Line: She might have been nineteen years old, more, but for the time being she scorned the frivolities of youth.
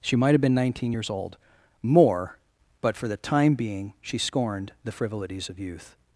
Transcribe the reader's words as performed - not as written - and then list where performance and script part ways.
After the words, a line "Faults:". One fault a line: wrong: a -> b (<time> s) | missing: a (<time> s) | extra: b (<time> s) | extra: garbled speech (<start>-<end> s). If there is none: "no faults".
She might have been nineteen years old, more, but for the time being she scorned the frivolities of youth.
Faults:
no faults